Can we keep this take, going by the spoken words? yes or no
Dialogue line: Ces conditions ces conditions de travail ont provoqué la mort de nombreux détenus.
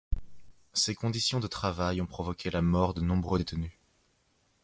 no